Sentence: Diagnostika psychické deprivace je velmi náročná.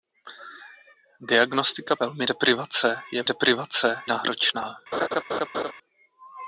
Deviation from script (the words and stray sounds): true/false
true